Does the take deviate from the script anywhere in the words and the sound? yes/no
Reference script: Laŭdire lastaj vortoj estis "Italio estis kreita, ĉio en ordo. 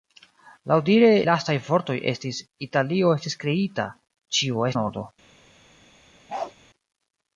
yes